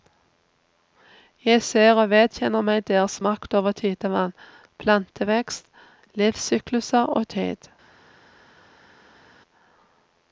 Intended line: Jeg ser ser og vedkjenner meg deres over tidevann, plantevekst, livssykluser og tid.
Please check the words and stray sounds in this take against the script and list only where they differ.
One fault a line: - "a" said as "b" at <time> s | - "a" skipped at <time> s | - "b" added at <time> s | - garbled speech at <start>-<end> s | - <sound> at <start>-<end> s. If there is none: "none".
- "ser" skipped at 1.9 s
- "makt" added at 3.3 s